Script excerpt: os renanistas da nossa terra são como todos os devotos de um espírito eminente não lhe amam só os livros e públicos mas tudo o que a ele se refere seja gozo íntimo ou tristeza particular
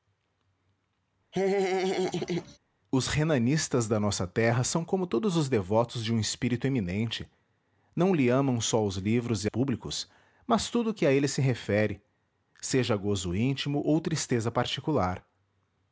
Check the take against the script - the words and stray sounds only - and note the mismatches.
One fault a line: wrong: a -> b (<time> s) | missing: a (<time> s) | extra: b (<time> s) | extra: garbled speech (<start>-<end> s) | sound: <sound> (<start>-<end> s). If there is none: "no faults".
sound: laugh (1.3-2.6 s)